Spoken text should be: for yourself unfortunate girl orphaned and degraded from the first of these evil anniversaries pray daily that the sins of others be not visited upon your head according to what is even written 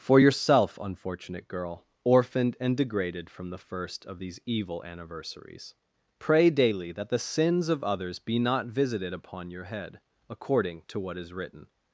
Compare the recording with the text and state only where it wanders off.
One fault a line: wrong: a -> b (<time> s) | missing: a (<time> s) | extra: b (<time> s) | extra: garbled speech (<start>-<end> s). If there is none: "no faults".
missing: even (11.3 s)